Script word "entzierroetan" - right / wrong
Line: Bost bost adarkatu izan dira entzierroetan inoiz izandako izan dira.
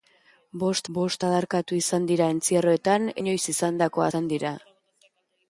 right